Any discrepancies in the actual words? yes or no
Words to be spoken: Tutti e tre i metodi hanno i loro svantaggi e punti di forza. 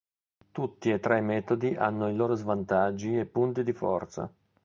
no